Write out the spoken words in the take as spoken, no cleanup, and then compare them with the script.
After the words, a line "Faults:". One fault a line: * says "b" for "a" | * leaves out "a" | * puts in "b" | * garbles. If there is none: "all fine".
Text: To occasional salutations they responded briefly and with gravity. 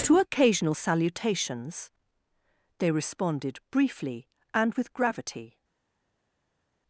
To occasional salutations they responded briefly and with gravity.
Faults:
all fine